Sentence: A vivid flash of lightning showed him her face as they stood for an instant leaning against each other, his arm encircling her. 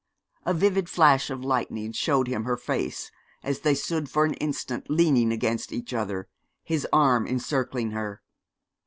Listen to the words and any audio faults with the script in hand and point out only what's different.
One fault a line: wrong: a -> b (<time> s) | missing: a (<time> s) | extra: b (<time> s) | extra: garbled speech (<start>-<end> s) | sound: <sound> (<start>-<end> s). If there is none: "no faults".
no faults